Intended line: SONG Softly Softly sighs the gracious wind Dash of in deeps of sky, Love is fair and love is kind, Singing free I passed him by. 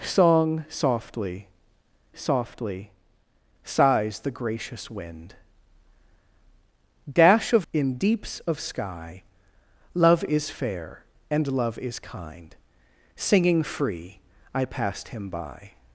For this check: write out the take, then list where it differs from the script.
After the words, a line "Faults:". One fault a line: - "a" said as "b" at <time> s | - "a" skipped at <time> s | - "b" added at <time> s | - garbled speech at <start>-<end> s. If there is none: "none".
SONG Softly Softly sighs the gracious wind Dash of in deeps of sky, Love is fair and love is kind, Singing free I passed him by.
Faults:
none